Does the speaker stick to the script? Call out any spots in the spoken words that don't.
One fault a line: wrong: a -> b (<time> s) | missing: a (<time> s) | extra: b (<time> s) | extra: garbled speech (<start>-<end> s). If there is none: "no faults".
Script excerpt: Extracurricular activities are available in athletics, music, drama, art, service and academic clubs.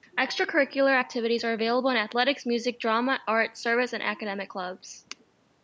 no faults